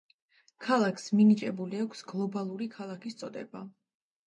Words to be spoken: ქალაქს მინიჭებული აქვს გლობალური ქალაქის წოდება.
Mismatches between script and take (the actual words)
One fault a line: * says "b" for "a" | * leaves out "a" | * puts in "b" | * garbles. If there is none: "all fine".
all fine